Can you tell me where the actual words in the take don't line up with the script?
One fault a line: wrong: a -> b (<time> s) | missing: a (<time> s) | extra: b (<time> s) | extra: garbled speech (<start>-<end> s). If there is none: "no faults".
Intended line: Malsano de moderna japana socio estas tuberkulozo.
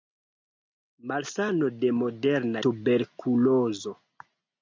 missing: japana socio estas (2.6 s)